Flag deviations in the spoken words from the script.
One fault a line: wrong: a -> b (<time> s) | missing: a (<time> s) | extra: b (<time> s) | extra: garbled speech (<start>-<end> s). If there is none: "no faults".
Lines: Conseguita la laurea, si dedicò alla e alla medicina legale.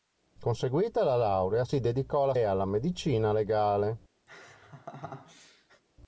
no faults